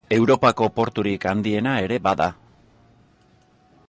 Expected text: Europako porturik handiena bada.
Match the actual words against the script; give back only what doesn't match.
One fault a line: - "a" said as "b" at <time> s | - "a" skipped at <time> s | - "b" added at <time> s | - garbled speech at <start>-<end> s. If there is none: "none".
- "ere" added at 1.8 s